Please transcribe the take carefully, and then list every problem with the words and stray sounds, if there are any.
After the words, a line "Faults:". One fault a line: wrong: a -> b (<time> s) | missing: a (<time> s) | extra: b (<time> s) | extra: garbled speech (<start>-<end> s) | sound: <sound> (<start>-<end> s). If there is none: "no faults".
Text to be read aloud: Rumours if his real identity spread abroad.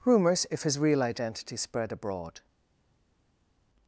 Rumours if his real identity spread abroad.
Faults:
no faults